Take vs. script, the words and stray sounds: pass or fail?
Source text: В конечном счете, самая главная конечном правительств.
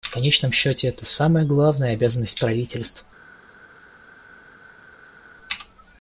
fail